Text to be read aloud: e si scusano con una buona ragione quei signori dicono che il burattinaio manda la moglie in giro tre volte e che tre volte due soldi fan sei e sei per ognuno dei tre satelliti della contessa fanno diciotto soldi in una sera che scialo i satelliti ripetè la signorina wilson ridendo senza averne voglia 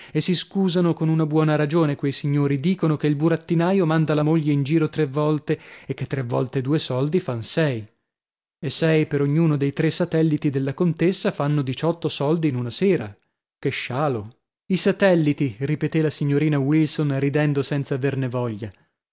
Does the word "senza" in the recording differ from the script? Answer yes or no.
no